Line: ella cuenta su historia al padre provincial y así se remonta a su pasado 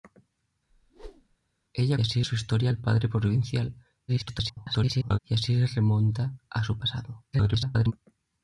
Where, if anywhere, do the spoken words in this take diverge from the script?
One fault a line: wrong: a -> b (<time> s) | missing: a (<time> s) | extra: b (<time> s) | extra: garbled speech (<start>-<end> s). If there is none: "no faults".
wrong: cuenta -> así (2.0 s)
extra: garbled speech (4.1-5.2 s)
extra: garbled speech (7.3-7.9 s)